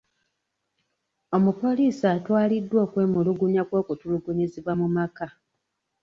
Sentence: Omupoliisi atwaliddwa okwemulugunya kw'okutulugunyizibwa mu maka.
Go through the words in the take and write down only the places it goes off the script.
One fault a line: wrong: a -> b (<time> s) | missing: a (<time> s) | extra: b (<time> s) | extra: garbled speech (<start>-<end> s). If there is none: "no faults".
no faults